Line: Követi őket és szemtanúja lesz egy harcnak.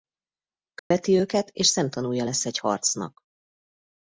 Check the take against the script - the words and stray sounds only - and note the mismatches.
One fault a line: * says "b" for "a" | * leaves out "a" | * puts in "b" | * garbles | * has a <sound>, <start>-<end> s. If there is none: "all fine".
* has a dropout, 0.8-0.9 s